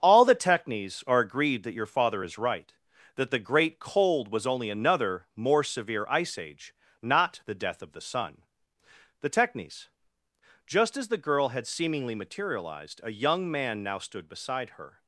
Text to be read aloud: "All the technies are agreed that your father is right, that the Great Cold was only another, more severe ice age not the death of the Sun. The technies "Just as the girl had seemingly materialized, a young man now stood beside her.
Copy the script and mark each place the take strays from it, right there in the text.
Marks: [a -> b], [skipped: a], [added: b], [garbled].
"All the technies are agreed that your father is right, that the Great Cold was only another, more severe ice age not the death of the Sun. The technies "Just as the girl had seemingly materialized, a young man now stood beside her.